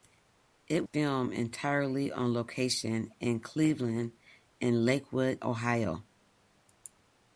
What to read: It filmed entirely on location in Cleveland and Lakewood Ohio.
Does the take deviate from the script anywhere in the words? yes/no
no